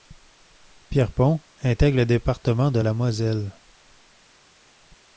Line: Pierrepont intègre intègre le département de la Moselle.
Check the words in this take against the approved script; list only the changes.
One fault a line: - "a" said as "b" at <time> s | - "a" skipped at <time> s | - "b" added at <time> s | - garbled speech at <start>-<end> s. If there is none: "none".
- "intègre" skipped at 2.0 s